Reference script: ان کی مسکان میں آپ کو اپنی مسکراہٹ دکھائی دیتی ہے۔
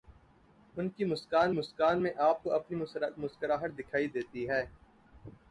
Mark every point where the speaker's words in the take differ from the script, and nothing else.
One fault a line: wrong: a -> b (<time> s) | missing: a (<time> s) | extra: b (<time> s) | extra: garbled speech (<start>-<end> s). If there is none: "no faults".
extra: مسکان (1.5 s)